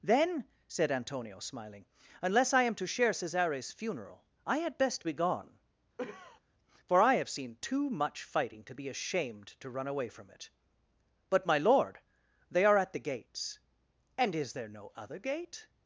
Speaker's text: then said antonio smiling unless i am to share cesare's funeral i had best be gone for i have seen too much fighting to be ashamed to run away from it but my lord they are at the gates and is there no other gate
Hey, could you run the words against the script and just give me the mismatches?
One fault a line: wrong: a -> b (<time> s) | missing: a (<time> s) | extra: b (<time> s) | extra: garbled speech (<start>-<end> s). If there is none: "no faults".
no faults